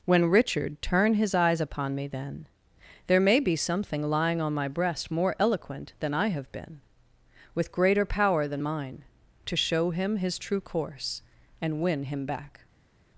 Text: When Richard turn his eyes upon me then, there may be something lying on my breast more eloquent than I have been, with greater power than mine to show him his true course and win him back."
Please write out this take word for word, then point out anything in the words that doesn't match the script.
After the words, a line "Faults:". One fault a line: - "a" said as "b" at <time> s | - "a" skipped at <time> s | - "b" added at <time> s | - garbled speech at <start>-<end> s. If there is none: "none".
When Richard turn his eyes upon me then, there may be something lying on my breast more eloquent than I have been, with greater power than mine to show him his true course and win him back."
Faults:
none